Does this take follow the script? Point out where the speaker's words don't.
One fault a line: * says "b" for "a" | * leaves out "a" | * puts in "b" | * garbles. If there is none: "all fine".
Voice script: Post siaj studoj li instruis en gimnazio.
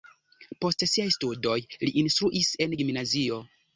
all fine